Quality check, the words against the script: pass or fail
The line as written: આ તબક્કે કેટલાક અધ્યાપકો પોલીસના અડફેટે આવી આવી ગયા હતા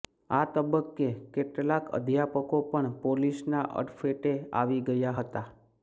fail